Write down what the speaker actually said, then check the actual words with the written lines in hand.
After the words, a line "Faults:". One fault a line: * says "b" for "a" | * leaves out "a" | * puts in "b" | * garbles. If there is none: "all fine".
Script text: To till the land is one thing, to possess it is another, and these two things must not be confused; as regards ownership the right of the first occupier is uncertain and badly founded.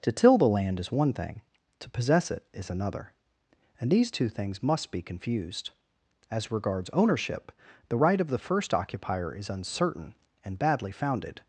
To till the land is one thing, to possess it is another, and these two things must be confused; as regards ownership the right of the first occupier is uncertain and badly founded.
Faults:
* leaves out "not"